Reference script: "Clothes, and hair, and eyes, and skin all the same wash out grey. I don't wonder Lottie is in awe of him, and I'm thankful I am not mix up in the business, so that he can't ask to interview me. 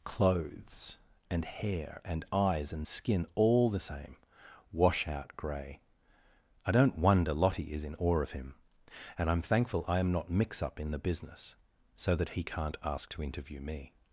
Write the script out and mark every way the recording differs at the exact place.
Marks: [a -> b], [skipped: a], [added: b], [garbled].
"Clothes, and hair, and eyes, and skin all the same wash out grey. I don't wonder Lottie is in awe of him, and I'm thankful I am not mix up in the business, so that he can't ask to interview me.